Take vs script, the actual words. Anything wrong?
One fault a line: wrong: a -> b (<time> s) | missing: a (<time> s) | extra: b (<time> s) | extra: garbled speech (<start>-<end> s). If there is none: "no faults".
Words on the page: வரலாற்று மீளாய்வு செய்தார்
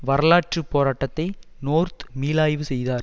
extra: போராட்டத்தை நோர்த் (0.7 s)